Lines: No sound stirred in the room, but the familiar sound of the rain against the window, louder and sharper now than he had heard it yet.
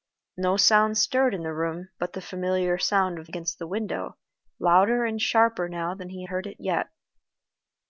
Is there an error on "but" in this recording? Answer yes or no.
no